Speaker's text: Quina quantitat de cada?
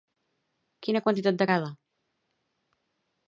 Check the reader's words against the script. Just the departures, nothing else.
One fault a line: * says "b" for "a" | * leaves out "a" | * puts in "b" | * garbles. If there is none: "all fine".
all fine